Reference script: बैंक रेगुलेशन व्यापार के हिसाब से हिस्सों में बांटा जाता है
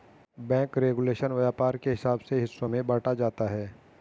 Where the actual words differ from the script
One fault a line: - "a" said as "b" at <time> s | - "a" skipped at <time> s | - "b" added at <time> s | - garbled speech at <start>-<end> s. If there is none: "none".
none